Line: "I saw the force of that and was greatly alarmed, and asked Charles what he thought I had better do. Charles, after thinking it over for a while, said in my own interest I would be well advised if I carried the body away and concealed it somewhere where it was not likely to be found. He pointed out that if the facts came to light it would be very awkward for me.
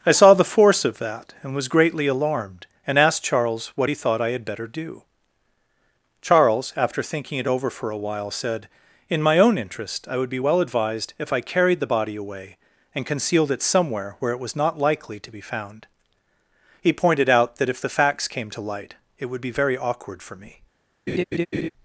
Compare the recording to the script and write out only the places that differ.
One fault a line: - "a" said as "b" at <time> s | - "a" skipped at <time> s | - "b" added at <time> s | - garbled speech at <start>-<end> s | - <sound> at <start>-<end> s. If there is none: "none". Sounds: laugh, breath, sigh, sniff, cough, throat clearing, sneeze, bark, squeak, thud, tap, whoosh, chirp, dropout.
- laugh at 21.1-21.7 s